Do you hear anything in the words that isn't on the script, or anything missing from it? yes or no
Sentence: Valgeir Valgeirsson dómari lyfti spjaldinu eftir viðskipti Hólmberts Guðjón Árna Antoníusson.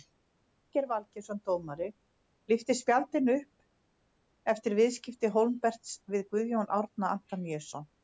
yes